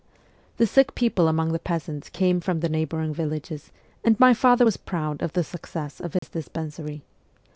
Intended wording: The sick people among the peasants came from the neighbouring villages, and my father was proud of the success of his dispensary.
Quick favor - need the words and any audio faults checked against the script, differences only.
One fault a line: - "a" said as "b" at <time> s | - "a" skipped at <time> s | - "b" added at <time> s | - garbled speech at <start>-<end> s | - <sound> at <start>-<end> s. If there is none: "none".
- dropout at 6.2-6.2 s